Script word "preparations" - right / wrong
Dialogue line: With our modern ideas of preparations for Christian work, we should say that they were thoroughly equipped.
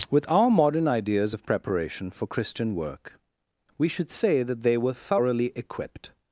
wrong